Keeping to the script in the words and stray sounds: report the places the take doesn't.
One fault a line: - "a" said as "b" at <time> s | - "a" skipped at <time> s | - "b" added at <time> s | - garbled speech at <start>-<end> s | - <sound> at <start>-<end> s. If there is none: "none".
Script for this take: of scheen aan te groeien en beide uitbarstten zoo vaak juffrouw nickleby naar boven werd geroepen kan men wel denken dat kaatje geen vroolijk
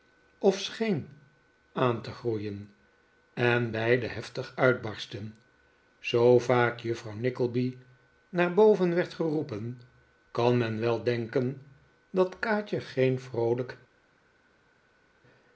- "heftig" added at 4.0 s